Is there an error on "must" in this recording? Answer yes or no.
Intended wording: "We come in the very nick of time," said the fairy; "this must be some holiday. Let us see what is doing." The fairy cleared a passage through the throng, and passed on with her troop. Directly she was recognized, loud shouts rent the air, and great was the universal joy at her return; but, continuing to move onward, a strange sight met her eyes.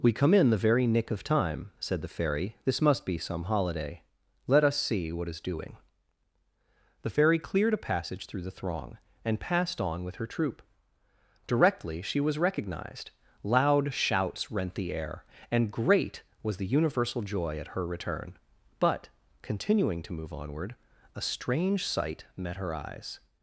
no